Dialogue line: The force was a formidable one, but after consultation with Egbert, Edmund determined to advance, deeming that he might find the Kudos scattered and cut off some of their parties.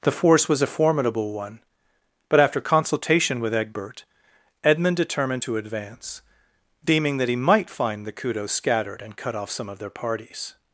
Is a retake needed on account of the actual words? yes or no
no